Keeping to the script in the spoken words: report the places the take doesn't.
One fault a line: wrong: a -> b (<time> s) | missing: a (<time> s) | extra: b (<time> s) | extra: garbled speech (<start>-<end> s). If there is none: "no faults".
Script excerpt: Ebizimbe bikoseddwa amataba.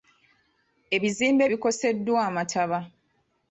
no faults